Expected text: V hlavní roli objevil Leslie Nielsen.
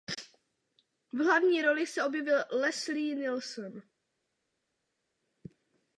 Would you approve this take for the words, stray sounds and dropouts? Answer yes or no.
no